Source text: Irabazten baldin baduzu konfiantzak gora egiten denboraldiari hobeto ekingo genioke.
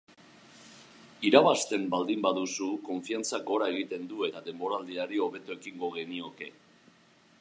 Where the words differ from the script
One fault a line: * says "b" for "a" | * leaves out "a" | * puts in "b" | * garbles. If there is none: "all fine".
* puts in "du eta"